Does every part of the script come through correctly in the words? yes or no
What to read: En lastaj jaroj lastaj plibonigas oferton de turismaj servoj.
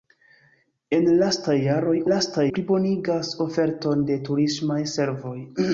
yes